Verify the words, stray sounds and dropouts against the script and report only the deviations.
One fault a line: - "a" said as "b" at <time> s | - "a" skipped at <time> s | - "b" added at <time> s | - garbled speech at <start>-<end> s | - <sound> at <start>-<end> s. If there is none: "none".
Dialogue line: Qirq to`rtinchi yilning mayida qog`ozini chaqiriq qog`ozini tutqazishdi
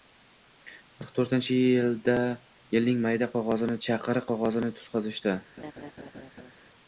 - laugh at 5.6-6.5 s